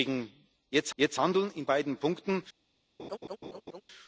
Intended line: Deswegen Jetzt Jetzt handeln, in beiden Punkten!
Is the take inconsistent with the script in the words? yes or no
no